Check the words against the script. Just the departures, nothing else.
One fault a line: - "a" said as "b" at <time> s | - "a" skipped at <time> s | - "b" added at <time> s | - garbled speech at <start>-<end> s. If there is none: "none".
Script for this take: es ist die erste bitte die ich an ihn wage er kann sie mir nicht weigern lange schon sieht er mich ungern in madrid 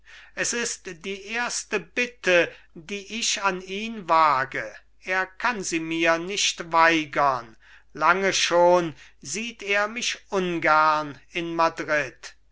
none